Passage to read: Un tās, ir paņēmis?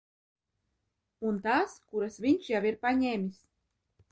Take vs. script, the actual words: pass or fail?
fail